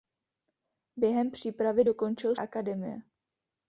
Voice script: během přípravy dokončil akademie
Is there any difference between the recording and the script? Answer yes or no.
no